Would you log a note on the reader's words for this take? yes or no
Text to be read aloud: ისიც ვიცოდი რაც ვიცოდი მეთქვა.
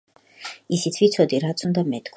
yes